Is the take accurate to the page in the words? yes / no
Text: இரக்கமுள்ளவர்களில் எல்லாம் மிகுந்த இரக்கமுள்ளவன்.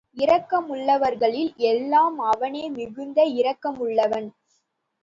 no